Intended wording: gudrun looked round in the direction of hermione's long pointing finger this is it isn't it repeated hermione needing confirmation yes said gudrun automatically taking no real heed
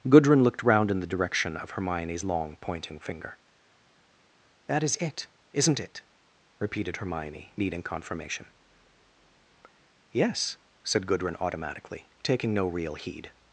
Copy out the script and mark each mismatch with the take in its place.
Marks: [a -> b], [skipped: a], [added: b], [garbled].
gudrun looked round in the direction of hermione's long pointing finger [this -> that] is it isn't it repeated hermione needing confirmation yes said gudrun automatically taking no real heed